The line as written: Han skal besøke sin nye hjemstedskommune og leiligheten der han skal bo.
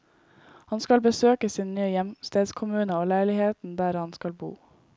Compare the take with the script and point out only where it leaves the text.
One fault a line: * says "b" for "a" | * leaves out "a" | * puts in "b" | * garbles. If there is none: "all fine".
all fine